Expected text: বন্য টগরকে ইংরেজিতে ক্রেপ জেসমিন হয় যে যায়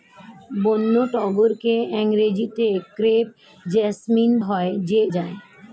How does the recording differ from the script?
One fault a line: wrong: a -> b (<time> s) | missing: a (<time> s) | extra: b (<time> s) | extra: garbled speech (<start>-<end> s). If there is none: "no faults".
no faults